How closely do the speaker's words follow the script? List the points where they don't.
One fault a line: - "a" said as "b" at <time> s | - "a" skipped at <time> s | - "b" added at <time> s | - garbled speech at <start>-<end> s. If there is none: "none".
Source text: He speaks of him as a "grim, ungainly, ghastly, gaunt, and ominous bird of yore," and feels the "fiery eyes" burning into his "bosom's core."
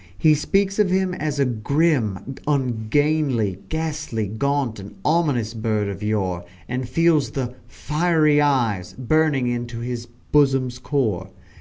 none